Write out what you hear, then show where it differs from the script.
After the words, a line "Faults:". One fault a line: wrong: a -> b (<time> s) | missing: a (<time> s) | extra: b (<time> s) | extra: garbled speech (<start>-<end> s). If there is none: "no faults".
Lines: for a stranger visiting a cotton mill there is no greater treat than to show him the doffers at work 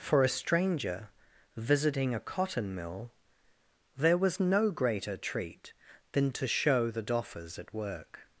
for a stranger visiting a cotton mill there was no greater treat than to show the doffers at work
Faults:
wrong: is -> was (4.2 s)
missing: him (6.9 s)